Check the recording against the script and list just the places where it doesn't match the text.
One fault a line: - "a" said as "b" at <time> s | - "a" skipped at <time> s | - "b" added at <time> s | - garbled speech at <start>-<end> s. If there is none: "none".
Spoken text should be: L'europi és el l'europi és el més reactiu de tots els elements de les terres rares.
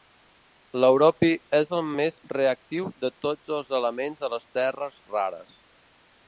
- "l'europi és el" skipped at 1.9 s